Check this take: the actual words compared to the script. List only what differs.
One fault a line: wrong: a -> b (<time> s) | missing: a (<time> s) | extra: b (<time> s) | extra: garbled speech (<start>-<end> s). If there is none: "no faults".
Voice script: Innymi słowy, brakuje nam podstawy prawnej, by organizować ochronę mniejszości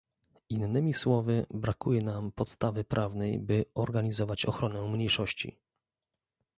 no faults